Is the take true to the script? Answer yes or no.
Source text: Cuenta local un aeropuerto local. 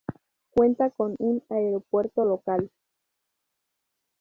no